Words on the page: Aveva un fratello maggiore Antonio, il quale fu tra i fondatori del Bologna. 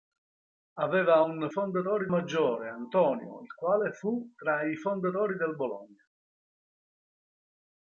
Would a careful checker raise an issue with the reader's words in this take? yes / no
yes